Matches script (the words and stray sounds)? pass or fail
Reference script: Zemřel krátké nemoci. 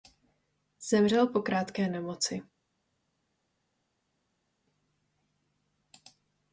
fail